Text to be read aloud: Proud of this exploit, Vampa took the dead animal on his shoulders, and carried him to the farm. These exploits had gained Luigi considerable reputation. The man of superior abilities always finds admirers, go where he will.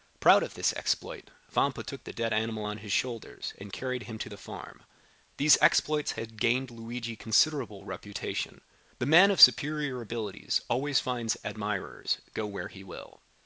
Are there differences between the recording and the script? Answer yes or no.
no